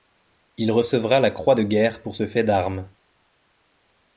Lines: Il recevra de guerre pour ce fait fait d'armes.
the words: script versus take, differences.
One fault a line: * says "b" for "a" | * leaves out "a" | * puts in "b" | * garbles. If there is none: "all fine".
* puts in "la croix"
* leaves out "fait"